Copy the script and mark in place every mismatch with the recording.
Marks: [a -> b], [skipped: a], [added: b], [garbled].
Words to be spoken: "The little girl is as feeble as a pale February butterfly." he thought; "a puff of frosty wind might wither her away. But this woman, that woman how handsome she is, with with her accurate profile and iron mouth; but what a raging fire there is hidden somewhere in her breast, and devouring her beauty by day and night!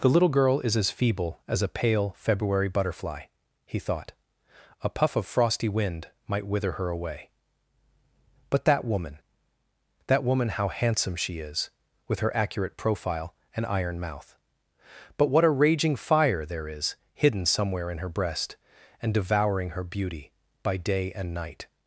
"The little girl is as feeble as a pale February butterfly." he thought; "a puff of frosty wind might wither her away. But [this -> that] woman, that woman how handsome she is, with [skipped: with] her accurate profile and iron mouth; but what a raging fire there is hidden somewhere in her breast, and devouring her beauty by day and night!